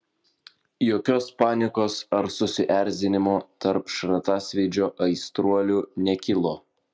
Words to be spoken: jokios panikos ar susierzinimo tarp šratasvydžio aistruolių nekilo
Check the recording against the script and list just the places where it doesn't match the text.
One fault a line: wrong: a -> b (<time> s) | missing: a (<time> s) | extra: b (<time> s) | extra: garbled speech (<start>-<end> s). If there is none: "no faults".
no faults